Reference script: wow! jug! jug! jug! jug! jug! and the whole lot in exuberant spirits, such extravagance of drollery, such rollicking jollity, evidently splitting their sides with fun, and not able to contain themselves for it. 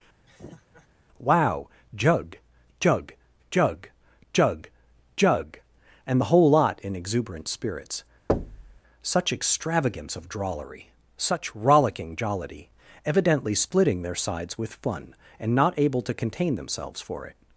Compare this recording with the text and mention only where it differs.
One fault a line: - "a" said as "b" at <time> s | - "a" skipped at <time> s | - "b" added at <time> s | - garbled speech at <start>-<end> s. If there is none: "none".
none